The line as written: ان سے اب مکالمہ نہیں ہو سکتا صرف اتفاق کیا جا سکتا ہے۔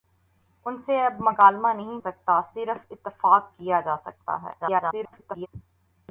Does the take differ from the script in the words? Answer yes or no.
yes